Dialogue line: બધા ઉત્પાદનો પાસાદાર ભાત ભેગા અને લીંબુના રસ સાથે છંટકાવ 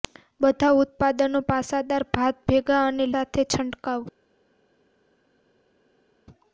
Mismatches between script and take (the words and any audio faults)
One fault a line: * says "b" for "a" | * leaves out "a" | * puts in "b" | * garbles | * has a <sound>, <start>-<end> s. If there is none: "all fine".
* leaves out "લીંબુના રસ"